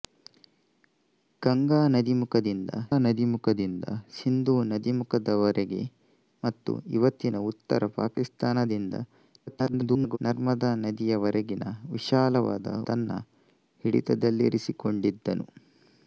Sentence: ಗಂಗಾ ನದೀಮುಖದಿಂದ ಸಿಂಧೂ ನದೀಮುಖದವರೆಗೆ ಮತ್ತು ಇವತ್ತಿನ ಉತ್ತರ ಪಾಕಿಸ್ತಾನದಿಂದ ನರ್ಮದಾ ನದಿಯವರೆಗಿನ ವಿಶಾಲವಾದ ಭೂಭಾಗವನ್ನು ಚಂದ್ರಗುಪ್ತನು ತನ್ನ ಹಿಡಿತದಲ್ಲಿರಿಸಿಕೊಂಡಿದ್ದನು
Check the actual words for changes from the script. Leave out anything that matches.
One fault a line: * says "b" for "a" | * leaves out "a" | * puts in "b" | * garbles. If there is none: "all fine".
* puts in "ನದೀಮುಖದಿಂದ"
* garbles
* leaves out "ಭೂಭಾಗವನ್ನು ಚಂದ್ರಗುಪ್ತನು"